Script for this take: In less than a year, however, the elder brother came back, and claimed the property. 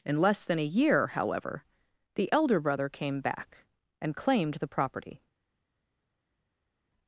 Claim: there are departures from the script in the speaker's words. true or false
false